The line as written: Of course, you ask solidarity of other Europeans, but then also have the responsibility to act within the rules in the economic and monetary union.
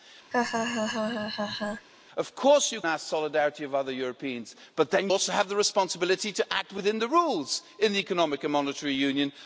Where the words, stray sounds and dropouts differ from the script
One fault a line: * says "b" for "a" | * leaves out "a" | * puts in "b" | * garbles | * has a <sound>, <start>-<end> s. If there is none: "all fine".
* has a laugh, 0.3-1.9 s